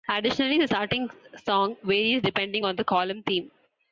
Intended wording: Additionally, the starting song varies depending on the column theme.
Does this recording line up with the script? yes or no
yes